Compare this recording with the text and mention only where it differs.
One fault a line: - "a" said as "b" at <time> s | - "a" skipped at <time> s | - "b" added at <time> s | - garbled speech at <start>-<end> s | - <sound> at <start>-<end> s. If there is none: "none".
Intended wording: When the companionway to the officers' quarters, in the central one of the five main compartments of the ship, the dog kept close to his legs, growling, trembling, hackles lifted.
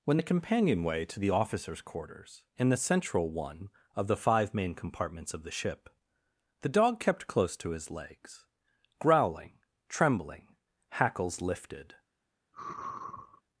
- sigh at 12.5-13.4 s